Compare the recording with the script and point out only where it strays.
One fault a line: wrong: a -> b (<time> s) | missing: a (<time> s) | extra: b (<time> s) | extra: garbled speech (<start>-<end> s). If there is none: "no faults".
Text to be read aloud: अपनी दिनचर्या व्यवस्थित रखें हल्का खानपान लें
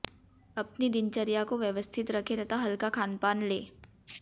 extra: को (1.4 s)
extra: तथा (2.3 s)